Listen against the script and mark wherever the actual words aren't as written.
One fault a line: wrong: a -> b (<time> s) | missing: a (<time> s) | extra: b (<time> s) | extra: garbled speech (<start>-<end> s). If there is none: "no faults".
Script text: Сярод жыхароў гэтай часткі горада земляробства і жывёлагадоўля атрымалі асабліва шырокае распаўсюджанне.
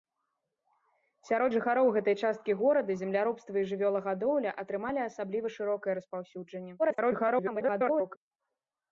extra: garbled speech (6.8-8.2 s)